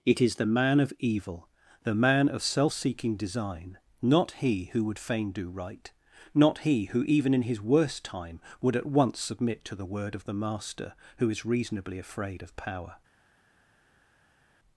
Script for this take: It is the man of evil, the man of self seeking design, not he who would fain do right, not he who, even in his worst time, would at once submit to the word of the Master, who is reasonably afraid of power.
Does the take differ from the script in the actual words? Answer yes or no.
no